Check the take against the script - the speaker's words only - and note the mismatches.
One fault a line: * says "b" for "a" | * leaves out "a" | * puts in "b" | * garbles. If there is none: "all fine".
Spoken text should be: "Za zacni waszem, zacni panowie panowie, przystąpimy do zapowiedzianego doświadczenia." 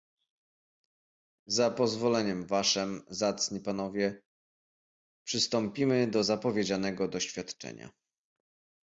* says "pozwoleniem" for "zacni"
* leaves out "panowie"